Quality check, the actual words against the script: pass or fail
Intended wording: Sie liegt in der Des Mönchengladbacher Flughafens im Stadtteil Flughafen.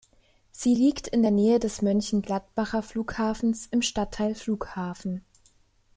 fail